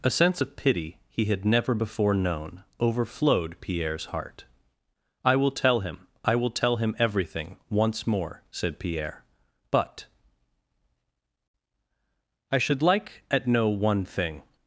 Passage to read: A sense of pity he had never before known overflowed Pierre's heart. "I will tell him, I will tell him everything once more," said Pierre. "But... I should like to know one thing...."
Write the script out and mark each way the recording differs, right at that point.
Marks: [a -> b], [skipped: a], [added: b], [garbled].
A sense of pity he had never before known overflowed Pierre's heart. "I will tell him, I will tell him everything once more," said Pierre. "But... I should like [to -> at] know one thing...."